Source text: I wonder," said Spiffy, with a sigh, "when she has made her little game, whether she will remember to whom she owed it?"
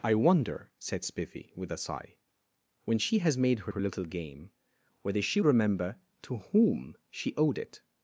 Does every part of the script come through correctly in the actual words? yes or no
no